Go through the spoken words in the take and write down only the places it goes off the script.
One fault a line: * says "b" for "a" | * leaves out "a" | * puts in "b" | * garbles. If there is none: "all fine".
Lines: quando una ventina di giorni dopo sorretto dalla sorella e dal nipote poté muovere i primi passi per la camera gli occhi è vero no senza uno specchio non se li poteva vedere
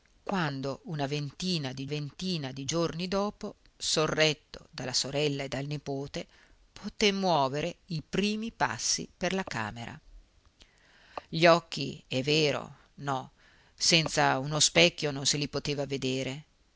* puts in "ventina di"